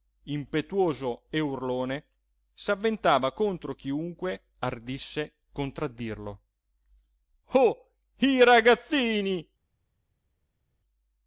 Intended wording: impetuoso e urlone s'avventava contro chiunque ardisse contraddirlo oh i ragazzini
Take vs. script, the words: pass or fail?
pass